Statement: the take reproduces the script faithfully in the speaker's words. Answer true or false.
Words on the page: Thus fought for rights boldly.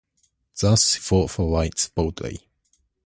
true